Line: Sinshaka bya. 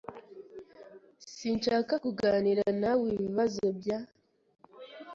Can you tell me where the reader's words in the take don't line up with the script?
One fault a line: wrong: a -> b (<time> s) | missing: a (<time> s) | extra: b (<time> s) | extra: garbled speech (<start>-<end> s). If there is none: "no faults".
extra: kuganira nawe ibibazo (2.0 s)